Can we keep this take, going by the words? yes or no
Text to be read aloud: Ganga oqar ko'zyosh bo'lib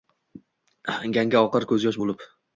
yes